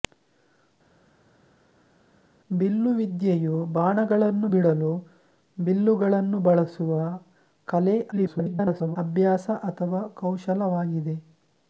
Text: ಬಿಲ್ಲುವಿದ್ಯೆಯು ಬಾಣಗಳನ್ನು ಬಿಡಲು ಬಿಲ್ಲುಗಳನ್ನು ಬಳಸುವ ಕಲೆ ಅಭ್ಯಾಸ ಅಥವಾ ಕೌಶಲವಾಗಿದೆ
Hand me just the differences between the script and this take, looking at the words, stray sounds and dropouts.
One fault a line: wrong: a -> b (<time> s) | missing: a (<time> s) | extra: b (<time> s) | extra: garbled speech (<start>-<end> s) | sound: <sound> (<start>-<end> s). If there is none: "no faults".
extra: garbled speech (8.1-9.0 s)